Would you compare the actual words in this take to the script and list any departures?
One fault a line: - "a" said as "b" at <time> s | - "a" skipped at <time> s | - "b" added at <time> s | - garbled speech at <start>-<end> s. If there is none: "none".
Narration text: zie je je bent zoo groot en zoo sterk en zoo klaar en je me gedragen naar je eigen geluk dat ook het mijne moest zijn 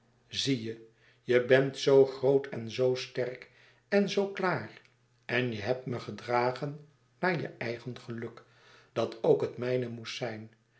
- "hebt" added at 5.6 s